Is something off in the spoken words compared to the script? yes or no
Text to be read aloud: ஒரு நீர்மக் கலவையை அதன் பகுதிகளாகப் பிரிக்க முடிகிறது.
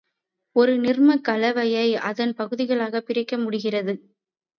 no